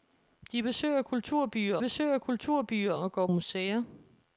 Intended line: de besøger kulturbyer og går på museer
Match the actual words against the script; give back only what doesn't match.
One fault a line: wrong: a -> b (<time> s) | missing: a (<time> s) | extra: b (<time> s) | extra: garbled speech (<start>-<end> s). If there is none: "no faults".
extra: besøger kulturbyer (1.8 s)
missing: på (3.3 s)